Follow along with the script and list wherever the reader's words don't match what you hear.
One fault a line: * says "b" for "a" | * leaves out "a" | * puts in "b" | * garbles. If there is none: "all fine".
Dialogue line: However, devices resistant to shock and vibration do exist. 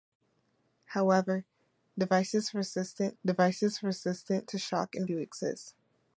* puts in "devices resistant"
* leaves out "vibration"